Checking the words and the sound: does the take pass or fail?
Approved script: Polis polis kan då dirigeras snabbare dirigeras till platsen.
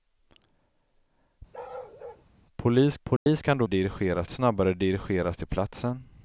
fail